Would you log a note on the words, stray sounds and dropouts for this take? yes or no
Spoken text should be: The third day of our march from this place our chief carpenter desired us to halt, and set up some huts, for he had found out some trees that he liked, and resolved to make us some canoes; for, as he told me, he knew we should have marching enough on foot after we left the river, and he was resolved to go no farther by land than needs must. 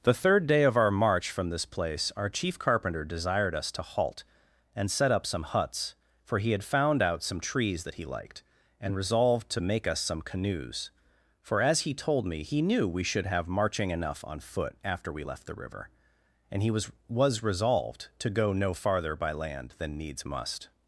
yes